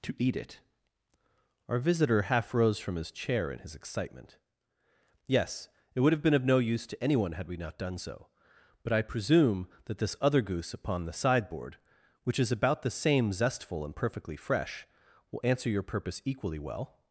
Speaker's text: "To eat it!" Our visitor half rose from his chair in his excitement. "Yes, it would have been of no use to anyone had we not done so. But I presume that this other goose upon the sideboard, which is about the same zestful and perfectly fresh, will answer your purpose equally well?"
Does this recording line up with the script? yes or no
yes